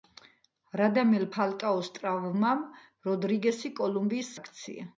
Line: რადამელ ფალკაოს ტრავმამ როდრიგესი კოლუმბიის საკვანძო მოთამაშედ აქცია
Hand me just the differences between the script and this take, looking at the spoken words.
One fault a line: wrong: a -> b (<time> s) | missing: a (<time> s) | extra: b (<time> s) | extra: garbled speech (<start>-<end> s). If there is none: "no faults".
missing: საკვანძო მოთამაშედ (4.3 s)